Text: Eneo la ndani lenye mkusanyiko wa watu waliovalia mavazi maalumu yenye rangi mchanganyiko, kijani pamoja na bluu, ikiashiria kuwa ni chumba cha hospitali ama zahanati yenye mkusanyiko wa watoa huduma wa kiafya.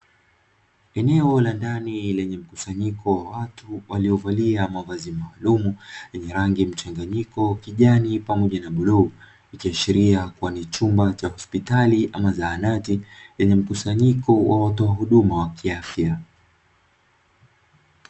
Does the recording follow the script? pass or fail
pass